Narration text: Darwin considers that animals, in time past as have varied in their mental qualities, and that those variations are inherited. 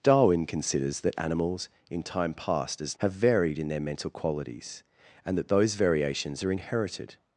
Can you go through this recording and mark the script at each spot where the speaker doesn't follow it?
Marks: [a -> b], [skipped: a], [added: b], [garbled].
Darwin considers that animals, in time past as have varied in their mental qualities, and that those variations are inherited.